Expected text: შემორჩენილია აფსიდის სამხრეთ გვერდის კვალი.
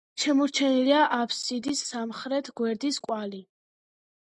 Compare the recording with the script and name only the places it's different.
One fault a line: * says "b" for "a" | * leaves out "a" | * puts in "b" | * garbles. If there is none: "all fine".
all fine